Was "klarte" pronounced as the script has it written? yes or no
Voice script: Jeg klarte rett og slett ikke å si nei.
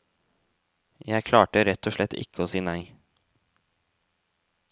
yes